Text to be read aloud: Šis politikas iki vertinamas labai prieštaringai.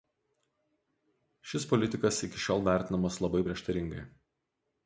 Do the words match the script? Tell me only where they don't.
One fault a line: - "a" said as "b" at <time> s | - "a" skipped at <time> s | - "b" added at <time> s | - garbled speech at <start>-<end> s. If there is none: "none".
- "šiol" added at 2.5 s